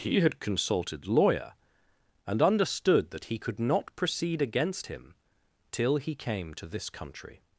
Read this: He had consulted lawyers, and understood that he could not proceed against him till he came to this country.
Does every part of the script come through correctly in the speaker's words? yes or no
no